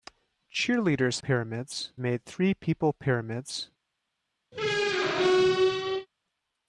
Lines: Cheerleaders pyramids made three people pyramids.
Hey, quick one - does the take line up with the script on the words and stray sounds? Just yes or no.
no